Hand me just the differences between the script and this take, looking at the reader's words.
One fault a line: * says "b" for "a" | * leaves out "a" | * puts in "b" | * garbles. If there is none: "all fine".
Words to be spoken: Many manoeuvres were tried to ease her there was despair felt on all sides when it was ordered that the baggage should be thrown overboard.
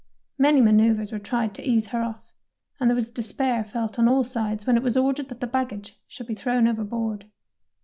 * puts in "off and"